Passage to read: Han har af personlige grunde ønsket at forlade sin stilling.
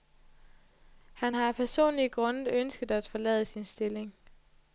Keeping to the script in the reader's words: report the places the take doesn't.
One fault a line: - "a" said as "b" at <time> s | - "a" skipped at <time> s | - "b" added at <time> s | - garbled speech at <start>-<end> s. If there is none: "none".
none